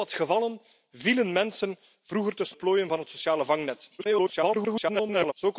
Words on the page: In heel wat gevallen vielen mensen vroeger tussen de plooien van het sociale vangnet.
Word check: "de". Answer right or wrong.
wrong